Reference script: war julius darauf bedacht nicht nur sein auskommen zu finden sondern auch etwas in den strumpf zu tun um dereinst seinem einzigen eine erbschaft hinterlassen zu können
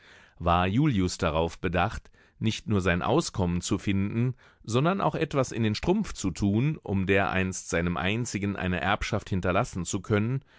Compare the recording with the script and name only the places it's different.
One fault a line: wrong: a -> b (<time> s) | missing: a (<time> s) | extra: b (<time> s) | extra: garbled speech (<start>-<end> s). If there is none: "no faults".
no faults